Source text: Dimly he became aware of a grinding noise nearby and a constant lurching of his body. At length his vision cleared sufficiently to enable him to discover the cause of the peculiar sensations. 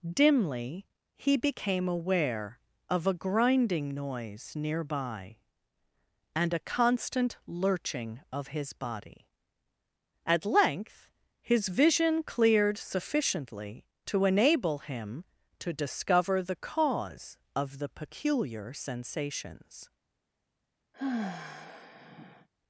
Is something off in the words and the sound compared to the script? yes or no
yes